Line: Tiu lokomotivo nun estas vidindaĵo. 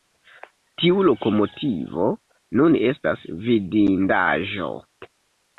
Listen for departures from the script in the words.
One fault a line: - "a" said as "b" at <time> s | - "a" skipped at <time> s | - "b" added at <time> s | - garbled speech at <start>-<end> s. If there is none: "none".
none